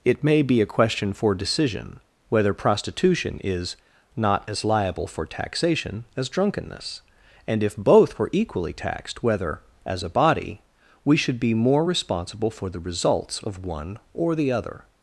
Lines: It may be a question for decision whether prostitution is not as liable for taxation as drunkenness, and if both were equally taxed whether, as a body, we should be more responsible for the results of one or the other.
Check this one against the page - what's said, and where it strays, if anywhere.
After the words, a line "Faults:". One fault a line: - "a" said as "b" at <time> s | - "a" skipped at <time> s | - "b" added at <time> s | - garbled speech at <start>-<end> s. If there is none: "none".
It may be a question for decision whether prostitution is not as liable for taxation as drunkenness, and if both were equally taxed whether, as a body, we should be more responsible for the results of one or the other.
Faults:
none